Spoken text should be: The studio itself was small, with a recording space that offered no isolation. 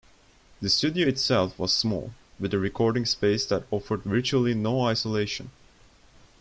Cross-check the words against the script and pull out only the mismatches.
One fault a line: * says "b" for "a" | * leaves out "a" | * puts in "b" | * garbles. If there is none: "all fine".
* puts in "virtually"